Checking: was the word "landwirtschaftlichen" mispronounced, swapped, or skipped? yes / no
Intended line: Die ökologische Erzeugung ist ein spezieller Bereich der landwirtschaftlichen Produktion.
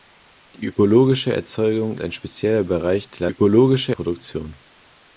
yes